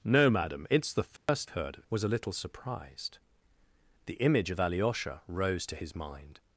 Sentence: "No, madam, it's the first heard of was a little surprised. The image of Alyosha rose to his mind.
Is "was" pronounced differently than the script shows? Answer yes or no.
no